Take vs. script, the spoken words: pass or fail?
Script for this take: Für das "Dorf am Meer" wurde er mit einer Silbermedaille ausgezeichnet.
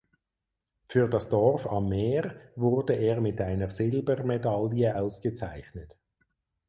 pass